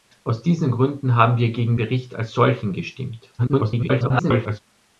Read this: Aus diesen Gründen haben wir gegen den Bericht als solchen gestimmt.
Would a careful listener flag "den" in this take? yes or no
yes